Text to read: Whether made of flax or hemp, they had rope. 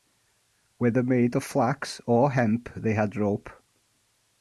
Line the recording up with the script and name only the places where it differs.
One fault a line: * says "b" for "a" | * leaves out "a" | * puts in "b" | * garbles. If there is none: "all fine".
all fine